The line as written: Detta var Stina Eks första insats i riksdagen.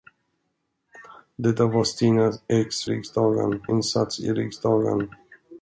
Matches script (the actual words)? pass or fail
fail